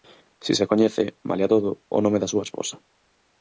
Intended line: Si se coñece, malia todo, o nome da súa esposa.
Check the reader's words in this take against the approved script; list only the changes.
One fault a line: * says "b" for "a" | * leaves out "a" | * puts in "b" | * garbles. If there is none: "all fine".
all fine